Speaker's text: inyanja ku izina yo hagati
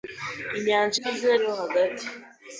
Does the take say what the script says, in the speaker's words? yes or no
yes